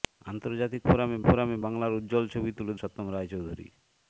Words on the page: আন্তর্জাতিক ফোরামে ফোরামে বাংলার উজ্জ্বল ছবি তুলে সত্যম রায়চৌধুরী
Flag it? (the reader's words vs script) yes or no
no